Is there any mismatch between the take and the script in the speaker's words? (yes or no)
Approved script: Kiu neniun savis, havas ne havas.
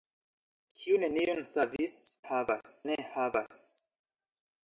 no